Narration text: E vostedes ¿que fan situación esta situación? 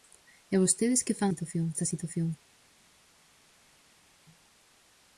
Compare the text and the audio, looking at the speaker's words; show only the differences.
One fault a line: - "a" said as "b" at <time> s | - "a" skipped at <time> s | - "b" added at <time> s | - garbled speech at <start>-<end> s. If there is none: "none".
none